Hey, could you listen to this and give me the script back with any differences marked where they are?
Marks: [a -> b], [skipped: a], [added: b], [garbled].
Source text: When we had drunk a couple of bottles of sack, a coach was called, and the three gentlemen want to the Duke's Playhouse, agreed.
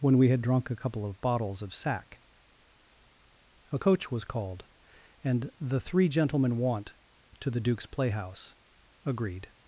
When we had drunk a couple of bottles of sack, a coach was called, and the three gentlemen want to the Duke's Playhouse, agreed.